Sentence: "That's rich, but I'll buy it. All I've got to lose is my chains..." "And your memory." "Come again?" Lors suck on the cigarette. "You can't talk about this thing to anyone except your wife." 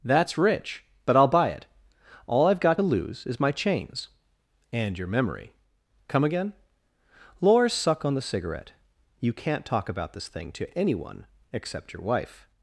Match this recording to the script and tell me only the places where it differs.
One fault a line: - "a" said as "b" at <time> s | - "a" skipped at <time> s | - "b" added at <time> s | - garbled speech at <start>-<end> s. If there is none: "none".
none